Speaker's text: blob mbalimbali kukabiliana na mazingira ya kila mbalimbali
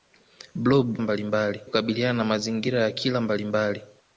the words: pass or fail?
pass